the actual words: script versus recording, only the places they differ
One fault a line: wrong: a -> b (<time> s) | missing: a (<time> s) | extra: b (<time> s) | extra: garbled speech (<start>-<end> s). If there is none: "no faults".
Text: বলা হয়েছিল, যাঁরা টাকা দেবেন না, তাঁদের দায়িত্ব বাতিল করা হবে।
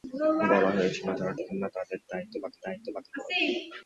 missing: টাকা (1.3 s)
extra: দায়িত্ব বাতিল (2.6 s)